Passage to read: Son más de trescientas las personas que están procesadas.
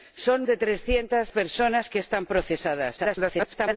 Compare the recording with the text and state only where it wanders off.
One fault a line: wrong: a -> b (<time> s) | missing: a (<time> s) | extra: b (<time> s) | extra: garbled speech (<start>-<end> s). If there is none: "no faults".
missing: más (0.5 s)
missing: las (1.3 s)
extra: garbled speech (3.0-3.8 s)